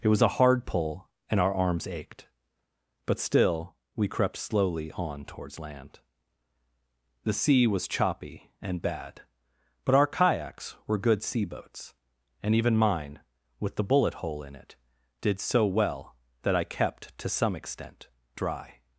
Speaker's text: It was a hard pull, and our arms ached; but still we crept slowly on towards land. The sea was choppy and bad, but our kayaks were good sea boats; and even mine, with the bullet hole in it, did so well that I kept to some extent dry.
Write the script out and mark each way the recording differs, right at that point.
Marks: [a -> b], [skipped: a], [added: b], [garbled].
It was a hard pull, and our arms ached; but still we crept slowly on towards land. The sea was choppy and bad, but our kayaks were good sea boats; and even mine, with the bullet hole in it, did so well that I kept to some extent dry.